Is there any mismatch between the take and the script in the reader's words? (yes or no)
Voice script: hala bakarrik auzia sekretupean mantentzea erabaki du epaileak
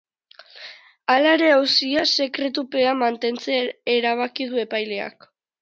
yes